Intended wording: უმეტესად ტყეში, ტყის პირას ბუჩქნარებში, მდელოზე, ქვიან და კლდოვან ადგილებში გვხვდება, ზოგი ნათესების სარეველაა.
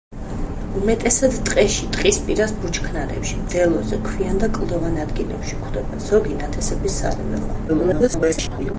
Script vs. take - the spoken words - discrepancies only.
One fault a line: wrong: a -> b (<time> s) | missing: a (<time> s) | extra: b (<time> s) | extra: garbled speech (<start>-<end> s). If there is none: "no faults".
extra: garbled speech (7.7-8.7 s)